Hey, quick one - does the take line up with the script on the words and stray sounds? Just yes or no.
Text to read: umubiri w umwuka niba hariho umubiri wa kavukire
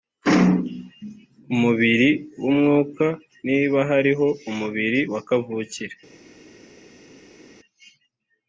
yes